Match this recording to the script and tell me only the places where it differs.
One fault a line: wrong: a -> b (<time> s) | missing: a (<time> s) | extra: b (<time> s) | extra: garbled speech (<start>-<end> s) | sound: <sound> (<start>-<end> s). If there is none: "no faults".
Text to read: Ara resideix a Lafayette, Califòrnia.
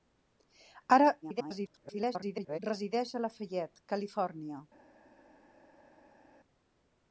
extra: garbled speech (1.2-2.6 s)